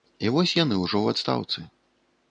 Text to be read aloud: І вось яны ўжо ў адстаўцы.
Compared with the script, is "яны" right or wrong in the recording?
right